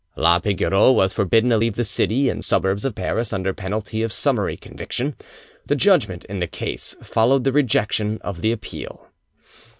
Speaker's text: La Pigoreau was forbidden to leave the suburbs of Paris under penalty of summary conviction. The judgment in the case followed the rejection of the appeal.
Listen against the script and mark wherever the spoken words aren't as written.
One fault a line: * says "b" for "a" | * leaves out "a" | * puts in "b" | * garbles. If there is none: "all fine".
* puts in "city and"